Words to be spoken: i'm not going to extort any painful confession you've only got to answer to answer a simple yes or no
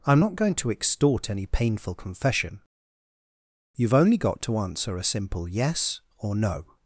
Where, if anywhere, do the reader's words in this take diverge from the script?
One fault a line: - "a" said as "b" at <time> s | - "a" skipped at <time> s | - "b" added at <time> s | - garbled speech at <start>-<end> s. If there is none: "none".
- "to answer" skipped at 5.0 s